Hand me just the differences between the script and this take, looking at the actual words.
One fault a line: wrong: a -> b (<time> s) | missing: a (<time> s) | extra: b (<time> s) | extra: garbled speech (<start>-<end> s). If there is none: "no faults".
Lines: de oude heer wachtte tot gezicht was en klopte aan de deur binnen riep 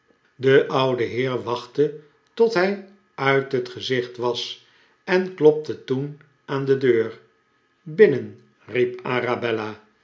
extra: hij uit het (2.5 s)
extra: toen (5.8 s)